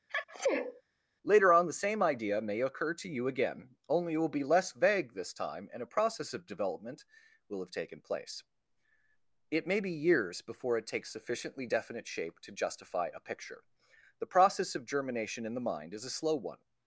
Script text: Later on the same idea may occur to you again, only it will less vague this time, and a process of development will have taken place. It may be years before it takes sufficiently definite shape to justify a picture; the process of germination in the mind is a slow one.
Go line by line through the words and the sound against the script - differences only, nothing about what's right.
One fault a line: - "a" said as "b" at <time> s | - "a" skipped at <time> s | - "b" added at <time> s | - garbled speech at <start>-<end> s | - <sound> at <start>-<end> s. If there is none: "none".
- sneeze at 0.1-0.8 s
- "be" added at 4.3 s